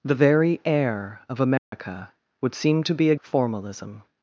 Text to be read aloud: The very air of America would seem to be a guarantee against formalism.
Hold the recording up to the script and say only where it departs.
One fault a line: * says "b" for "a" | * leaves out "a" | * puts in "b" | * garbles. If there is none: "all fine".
* leaves out "guarantee against"